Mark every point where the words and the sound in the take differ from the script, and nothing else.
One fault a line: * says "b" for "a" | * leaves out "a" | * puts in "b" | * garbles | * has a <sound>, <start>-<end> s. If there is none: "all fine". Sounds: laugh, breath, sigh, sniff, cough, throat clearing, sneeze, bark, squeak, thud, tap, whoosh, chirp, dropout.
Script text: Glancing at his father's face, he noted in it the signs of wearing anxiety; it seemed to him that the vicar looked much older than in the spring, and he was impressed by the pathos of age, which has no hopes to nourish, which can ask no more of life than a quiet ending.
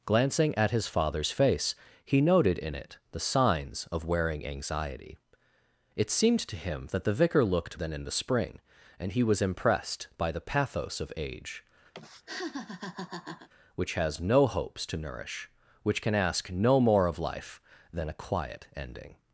* leaves out "much older"
* has a laugh, 11.9-13.5 s